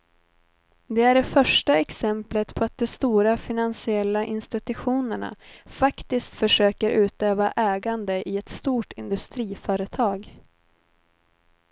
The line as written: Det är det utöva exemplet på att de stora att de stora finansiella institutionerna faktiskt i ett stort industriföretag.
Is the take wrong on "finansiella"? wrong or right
wrong